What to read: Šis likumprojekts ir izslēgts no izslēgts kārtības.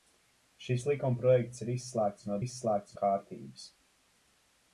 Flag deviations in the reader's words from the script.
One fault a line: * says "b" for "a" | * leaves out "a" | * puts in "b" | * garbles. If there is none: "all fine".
all fine